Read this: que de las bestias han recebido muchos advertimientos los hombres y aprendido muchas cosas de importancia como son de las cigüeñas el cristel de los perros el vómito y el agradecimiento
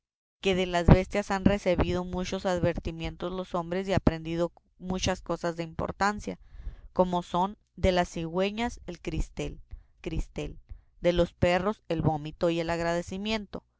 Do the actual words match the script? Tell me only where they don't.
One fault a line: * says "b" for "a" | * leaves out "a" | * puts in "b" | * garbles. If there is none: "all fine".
* puts in "cristel"